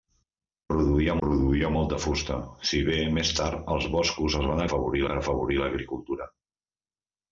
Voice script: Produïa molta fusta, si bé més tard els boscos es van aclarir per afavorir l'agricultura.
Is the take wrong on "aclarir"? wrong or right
wrong